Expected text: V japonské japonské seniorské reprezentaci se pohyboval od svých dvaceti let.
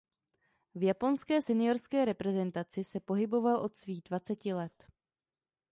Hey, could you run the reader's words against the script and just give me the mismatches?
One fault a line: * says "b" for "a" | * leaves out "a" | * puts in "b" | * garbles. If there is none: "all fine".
* leaves out "japonské"